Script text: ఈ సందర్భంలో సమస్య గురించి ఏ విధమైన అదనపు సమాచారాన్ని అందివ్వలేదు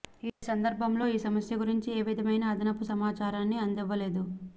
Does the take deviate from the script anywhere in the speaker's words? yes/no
yes